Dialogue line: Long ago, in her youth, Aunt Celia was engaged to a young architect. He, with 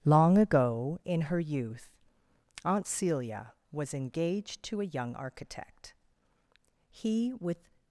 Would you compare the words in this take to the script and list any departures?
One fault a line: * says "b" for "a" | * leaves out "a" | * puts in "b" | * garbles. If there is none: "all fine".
all fine